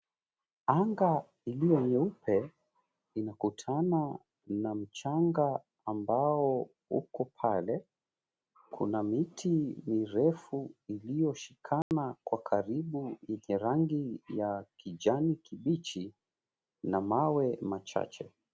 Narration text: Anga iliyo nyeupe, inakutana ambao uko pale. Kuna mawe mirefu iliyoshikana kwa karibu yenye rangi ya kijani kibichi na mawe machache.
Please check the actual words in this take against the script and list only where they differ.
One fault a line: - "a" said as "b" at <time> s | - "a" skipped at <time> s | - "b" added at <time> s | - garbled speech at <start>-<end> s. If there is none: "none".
- "na mchanga" added at 4.5 s
- "mawe" said as "miti" at 9.0 s